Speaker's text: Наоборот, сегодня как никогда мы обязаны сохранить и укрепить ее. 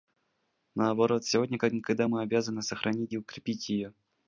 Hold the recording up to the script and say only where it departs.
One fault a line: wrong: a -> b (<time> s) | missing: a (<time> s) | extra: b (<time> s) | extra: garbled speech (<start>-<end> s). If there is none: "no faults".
no faults